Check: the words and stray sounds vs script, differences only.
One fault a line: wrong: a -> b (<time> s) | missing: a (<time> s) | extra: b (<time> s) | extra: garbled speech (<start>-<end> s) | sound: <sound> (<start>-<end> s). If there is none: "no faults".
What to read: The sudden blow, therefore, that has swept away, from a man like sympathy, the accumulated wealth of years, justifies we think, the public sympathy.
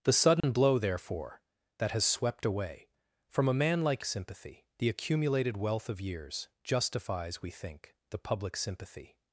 sound: dropout (0.4-0.4 s)